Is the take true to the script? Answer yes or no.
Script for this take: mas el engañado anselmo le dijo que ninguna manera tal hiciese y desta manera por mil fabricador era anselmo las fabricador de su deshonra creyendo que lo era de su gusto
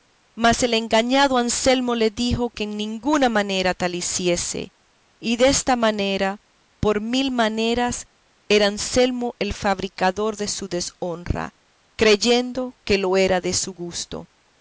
no